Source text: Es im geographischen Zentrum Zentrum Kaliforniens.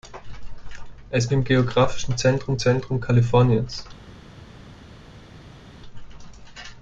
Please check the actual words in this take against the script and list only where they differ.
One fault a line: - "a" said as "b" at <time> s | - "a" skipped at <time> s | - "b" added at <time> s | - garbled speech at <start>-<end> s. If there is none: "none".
none